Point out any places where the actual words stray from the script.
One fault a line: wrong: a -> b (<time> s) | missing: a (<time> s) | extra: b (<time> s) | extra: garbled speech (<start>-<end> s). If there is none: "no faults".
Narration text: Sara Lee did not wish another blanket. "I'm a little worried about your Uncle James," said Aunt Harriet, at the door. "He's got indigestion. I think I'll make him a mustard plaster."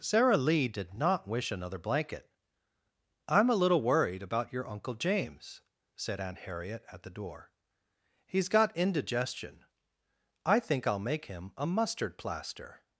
no faults